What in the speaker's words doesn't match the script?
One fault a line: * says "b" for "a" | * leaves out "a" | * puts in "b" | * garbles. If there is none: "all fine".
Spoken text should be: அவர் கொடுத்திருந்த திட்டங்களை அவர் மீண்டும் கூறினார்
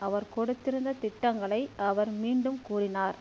all fine